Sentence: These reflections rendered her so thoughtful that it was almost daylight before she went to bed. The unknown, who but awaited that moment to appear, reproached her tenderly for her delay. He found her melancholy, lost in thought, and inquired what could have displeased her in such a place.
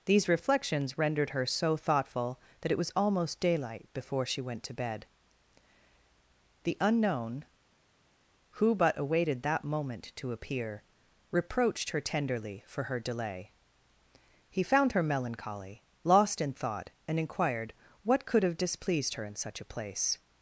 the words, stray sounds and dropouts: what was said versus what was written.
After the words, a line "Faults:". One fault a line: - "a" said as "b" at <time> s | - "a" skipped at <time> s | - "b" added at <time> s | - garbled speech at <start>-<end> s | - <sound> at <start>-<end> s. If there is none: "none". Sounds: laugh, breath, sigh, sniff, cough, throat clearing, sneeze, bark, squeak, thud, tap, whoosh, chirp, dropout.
These reflections rendered her so thoughtful that it was almost daylight before she went to bed. The unknown, who but awaited that moment to appear, reproached her tenderly for her delay. He found her melancholy, lost in thought, and inquired what could have displeased her in such a place.
Faults:
none